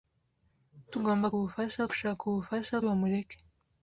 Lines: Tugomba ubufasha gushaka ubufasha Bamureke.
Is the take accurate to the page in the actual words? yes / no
yes